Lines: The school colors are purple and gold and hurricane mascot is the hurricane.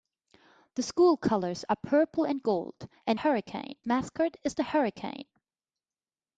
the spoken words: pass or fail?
pass